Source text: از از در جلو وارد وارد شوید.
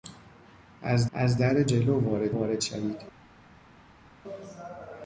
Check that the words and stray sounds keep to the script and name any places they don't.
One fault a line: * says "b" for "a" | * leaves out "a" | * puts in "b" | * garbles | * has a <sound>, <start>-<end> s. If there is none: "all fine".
all fine